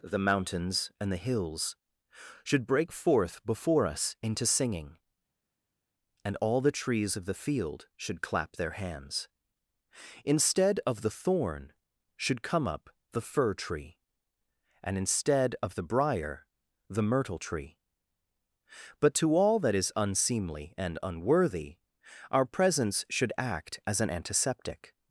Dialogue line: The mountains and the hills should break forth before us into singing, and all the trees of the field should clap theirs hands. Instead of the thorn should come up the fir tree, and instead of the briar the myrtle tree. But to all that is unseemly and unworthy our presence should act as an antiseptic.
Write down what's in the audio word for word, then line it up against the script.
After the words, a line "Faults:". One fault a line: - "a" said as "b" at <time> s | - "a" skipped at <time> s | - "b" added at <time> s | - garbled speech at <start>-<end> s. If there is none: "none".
The mountains and the hills should break forth before us into singing, and all the trees of the field should clap their hands. Instead of the thorn should come up the fir tree, and instead of the briar the myrtle tree. But to all that is unseemly and unworthy our presence should act as an antiseptic.
Faults:
- "theirs" said as "their" at 8.5 s